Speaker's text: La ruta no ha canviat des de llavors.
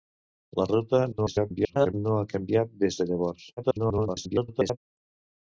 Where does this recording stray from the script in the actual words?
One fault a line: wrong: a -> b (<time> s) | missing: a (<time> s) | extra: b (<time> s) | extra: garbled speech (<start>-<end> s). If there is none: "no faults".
extra: garbled speech (1.1-1.9 s)
extra: garbled speech (3.6-4.8 s)